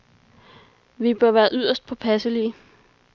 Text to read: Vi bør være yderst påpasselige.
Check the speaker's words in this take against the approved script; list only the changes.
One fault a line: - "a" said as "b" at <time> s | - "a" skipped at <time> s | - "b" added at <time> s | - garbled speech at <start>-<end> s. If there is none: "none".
none